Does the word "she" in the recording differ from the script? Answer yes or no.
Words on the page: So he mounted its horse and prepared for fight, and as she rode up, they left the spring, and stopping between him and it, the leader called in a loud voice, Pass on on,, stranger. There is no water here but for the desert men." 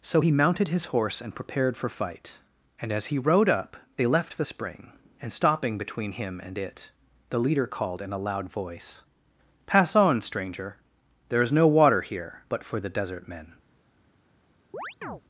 yes